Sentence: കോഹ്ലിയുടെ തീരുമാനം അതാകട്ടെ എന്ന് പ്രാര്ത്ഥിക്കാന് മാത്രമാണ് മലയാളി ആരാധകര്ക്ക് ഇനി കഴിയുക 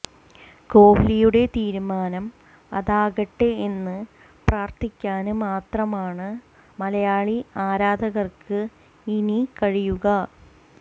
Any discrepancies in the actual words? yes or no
no